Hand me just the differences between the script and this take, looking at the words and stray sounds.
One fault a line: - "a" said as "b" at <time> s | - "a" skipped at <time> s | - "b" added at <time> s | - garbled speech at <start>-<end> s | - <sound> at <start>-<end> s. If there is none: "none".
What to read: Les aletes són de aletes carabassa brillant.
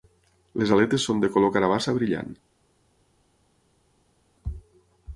- "aletes" said as "color" at 1.3 s